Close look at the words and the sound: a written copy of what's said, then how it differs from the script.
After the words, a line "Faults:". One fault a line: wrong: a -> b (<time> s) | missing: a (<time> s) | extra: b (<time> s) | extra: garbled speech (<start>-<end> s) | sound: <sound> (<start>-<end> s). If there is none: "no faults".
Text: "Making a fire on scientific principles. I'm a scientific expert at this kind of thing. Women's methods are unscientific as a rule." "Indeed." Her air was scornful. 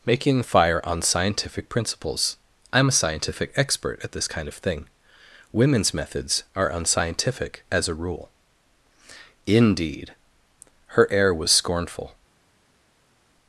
"Making fire on scientific principles. I'm a scientific expert at this kind of thing. Women's methods are unscientific as a rule." "Indeed." Her air was scornful.
Faults:
missing: a (0.4 s)